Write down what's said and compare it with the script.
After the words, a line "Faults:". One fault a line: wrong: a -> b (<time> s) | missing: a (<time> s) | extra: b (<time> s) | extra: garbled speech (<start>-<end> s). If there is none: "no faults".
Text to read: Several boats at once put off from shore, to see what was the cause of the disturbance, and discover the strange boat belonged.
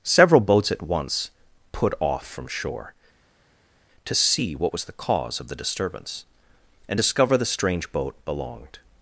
Several boats at once put off from shore, to see what was the cause of the disturbance, and discover the strange boat belonged.
Faults:
no faults